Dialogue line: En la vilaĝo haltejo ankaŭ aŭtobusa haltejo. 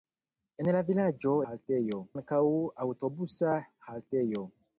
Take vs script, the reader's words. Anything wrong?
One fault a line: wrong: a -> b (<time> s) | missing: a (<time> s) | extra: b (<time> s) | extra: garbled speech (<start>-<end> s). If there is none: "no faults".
no faults